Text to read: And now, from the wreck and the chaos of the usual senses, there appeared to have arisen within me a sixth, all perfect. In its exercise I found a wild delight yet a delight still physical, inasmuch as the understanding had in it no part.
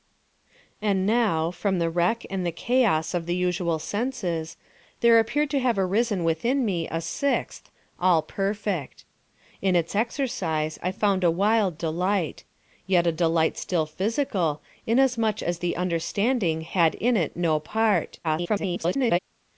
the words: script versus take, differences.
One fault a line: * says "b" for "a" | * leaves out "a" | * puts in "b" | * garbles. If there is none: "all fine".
* garbles